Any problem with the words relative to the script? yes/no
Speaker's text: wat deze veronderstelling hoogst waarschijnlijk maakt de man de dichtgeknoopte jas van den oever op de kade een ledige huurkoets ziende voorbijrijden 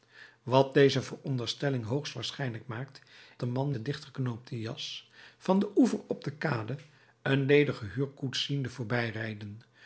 no